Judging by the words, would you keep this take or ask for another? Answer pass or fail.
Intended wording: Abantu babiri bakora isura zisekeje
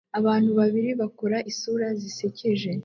pass